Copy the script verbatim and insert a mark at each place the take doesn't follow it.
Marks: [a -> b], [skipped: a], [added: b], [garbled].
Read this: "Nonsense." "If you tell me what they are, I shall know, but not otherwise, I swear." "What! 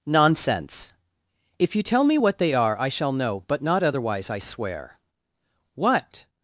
"Nonsense." "If you tell me what they are, I shall know, but not otherwise, I swear." "What!